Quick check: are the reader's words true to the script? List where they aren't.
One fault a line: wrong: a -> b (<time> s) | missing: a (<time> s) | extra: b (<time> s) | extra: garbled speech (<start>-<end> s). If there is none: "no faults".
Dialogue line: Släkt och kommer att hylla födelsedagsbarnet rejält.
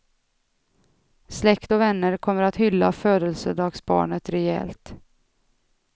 extra: vänner (1.8 s)